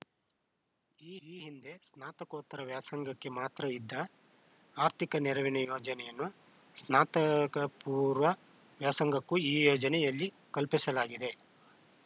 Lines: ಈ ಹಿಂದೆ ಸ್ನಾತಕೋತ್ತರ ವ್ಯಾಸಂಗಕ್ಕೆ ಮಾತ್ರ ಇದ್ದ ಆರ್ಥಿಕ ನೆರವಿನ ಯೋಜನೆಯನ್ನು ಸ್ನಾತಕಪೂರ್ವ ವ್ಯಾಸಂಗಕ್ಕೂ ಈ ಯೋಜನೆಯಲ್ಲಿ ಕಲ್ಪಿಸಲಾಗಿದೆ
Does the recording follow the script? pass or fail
fail